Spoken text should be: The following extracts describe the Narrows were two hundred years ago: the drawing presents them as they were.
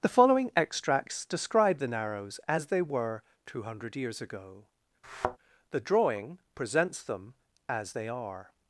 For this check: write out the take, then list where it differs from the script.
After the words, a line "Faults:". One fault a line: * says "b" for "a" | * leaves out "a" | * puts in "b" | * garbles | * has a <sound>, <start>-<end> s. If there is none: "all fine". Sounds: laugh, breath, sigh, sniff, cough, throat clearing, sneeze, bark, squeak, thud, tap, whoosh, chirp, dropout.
The following extracts describe the Narrows as they were two hundred years ago: the drawing presents them as they are.
Faults:
* puts in "as they"
* has a thud, 5.0-5.4 s
* says "are" for "were"